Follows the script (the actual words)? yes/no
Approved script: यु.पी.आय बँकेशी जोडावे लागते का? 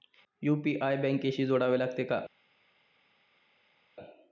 yes